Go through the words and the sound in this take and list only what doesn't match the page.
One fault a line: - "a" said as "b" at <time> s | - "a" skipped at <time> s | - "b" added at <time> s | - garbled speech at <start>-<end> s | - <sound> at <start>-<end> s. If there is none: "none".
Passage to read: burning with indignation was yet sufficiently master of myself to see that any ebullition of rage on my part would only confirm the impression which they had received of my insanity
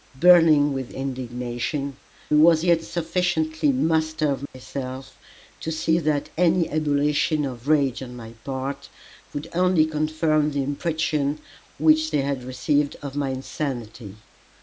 - dropout at 4.5-4.5 s